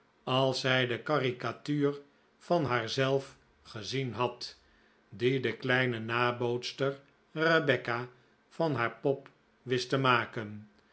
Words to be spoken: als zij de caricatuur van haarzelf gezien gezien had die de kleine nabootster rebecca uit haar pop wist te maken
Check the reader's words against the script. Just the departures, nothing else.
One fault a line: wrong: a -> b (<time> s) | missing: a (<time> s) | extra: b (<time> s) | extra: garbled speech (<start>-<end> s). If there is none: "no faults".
missing: gezien (4.1 s)
wrong: uit -> van (8.5 s)